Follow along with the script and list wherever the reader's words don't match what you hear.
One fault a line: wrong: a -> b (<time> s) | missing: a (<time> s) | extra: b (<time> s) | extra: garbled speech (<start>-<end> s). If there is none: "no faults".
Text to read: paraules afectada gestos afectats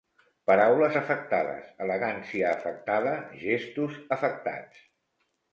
extra: afectades elegància (1.0 s)